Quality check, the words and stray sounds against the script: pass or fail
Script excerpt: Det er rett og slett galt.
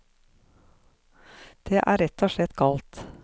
pass